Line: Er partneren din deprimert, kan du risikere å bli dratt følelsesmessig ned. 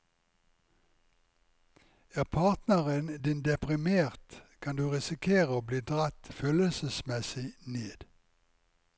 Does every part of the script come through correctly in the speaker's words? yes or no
yes